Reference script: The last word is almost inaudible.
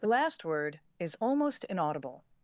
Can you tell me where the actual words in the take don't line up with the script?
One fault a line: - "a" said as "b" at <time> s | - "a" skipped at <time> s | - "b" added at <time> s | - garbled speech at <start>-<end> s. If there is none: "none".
none